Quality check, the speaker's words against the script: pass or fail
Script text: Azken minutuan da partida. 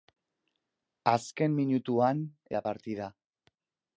pass